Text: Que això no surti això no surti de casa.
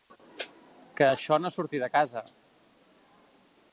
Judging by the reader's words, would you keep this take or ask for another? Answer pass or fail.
fail